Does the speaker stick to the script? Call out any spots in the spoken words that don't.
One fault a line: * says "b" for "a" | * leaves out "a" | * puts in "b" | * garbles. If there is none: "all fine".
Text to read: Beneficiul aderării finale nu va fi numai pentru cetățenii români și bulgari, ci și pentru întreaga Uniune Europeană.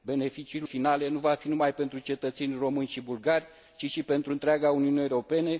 * leaves out "aderării"